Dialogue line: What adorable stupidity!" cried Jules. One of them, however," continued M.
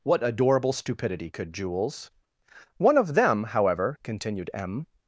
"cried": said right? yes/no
no